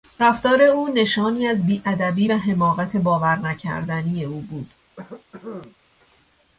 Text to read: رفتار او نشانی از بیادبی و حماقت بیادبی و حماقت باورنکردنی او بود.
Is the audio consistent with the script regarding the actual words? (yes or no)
no